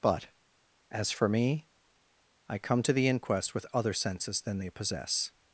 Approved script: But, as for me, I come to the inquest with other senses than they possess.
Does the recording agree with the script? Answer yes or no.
yes